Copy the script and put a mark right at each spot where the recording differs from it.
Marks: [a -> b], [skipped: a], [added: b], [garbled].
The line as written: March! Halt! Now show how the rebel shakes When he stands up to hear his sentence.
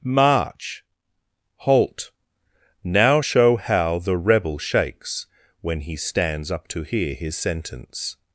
March! Halt! Now show how the rebel shakes When he stands up to hear his sentence.